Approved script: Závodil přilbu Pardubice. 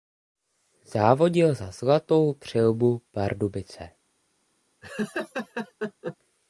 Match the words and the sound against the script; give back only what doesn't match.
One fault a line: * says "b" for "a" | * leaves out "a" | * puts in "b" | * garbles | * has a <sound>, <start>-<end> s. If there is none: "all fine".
* puts in "za Zlatou"
* has a laugh, 4.8-6.2 s